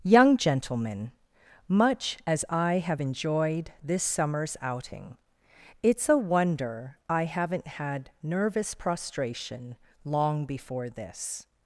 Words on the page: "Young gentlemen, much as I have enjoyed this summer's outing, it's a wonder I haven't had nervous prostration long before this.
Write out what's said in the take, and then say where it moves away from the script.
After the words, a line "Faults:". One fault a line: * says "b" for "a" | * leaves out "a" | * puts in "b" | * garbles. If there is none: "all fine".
"Young gentlemen, much as I have enjoyed this summer's outing, it's a wonder I haven't had nervous prostration long before this.
Faults:
all fine